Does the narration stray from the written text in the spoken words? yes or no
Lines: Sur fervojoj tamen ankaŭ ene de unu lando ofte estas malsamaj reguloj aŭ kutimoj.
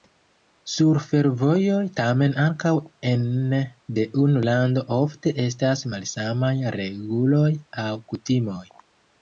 no